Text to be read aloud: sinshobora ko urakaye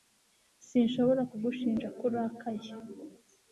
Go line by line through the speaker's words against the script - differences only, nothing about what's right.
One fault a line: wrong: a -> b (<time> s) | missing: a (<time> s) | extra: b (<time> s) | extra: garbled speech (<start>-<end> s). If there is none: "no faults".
extra: kugushinja (1.3 s)